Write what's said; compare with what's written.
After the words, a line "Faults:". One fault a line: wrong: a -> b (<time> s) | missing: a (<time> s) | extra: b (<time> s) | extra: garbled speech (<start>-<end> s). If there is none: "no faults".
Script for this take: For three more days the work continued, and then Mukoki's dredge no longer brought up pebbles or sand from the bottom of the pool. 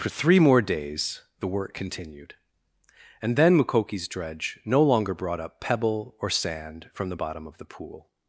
For three more days the work continued, and then Mukoki's dredge no longer brought up pebble or sand from the bottom of the pool.
Faults:
wrong: pebbles -> pebble (5.6 s)